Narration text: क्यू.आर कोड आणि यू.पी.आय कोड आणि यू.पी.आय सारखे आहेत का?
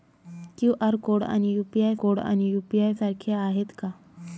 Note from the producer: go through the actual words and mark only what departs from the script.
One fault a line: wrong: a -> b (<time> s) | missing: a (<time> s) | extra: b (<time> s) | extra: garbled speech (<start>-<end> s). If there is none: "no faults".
no faults